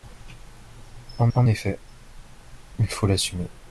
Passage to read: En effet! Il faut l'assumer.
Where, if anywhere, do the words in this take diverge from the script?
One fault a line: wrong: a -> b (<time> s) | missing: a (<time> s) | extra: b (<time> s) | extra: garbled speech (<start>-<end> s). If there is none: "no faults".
extra: en (1.4 s)